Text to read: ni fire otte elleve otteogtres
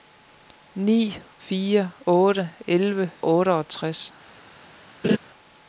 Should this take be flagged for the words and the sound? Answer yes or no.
yes